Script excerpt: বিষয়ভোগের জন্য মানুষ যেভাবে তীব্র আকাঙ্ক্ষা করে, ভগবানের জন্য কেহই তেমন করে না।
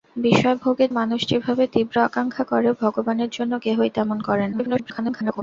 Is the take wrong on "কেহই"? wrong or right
right